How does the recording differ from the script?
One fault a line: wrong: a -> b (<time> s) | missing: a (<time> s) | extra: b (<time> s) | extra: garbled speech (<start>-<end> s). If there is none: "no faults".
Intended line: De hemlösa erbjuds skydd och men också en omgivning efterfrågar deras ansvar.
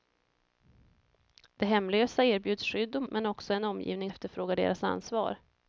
no faults